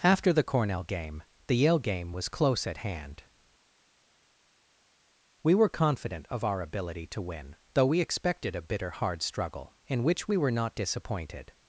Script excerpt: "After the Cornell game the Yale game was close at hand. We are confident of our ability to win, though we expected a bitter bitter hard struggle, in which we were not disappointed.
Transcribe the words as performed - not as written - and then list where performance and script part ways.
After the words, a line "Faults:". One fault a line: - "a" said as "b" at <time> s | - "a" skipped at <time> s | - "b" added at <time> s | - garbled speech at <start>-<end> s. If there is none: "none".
"After the Cornell game the Yale game was close at hand. We were confident of our ability to win, though we expected a bitter hard struggle, in which we were not disappointed.
Faults:
- "are" said as "were" at 5.5 s
- "bitter" skipped at 8.9 s